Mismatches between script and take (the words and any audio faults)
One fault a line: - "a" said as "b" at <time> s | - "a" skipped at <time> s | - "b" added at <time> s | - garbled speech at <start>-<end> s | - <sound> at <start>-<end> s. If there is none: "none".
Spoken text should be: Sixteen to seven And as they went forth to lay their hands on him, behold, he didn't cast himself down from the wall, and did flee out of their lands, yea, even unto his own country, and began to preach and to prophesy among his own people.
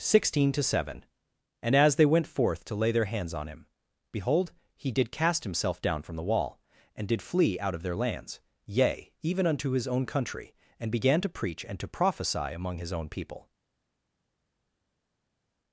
- "didn't" said as "did" at 4.9 s